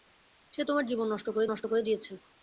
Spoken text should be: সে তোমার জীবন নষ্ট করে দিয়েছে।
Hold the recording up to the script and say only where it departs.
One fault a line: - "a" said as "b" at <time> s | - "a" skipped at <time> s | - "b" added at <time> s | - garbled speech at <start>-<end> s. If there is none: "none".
- "নষ্ট করে" added at 1.5 s